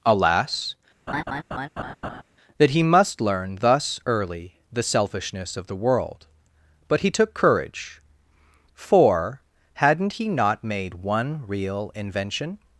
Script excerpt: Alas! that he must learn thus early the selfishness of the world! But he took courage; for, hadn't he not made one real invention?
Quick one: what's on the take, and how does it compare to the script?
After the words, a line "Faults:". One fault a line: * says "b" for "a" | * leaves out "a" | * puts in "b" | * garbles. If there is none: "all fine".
Alas! that he must learn thus early the selfishness of the world! But he took courage; for, hadn't he not made one real invention?
Faults:
all fine